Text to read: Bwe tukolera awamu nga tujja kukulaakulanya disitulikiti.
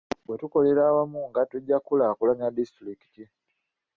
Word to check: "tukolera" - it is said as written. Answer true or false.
true